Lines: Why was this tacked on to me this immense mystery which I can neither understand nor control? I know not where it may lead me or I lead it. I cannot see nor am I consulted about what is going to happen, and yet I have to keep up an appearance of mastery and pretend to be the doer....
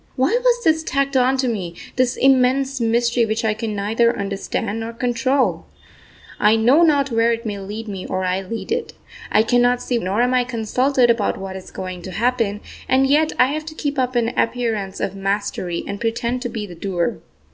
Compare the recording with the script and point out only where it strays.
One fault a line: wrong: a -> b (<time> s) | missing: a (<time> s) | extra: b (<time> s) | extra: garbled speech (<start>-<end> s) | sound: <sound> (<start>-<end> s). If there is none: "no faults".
no faults